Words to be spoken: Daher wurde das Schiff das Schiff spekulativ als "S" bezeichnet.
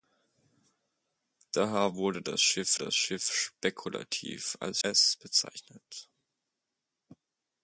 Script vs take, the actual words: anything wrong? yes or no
no